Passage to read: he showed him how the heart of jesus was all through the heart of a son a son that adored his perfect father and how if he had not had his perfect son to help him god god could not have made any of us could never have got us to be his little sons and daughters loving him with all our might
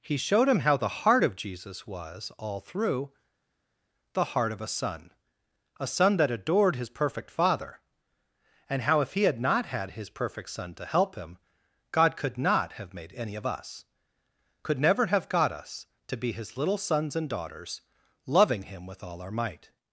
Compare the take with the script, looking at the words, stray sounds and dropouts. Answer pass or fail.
fail